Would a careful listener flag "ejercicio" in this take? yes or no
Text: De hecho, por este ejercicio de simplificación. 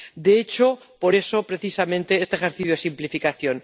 no